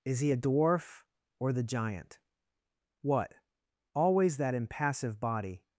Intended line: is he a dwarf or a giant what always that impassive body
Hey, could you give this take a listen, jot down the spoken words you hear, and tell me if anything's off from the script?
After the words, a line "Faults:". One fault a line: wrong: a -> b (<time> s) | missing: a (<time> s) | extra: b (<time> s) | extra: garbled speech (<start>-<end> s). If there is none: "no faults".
is he a dwarf or the giant what always that impassive body
Faults:
wrong: a -> the (1.5 s)